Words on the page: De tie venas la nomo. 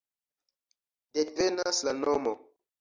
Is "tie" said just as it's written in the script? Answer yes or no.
no